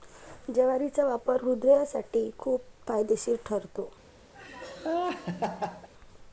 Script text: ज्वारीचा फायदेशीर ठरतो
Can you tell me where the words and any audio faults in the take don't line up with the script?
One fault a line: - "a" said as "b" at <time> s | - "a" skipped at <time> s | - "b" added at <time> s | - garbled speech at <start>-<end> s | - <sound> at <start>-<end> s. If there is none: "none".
- "वापर हृदयासाठी खूप" added at 1.0 s
- laugh at 4.3-5.9 s